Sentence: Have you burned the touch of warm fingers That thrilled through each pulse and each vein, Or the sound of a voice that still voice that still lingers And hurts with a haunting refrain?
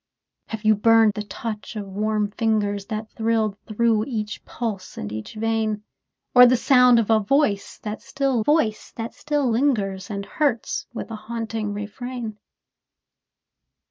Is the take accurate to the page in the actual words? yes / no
yes